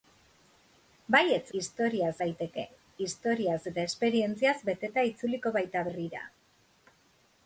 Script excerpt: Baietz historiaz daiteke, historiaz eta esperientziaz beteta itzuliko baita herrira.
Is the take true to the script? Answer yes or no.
yes